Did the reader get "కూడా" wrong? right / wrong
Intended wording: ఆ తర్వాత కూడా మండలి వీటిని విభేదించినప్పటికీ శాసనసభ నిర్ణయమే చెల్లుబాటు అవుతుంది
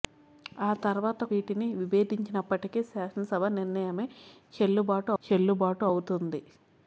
wrong